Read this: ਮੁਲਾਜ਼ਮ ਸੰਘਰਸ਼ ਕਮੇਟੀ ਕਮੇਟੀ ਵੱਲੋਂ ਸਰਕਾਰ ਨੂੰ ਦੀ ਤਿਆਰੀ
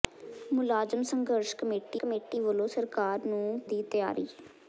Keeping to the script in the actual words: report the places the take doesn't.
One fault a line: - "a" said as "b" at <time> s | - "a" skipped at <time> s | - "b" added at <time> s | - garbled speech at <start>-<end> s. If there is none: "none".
none